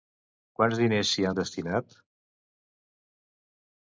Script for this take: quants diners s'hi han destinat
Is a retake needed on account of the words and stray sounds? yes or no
no